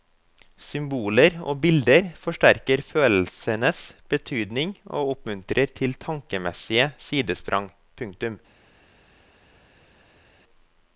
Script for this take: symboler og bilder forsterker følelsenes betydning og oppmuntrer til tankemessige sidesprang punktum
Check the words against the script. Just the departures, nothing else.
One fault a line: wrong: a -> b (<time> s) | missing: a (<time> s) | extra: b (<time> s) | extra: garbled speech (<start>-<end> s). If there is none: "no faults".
no faults